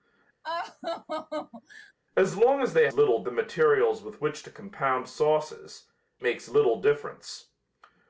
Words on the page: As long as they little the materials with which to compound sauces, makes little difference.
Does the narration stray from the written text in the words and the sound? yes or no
yes